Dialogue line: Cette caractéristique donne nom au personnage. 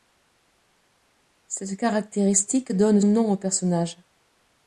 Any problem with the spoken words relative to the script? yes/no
no